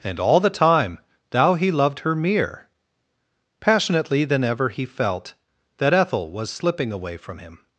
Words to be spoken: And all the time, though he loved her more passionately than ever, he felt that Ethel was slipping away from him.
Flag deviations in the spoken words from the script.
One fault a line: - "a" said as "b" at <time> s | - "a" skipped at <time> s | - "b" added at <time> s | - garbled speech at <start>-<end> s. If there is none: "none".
- "though" said as "thou" at 1.3 s
- "more" said as "mere" at 2.2 s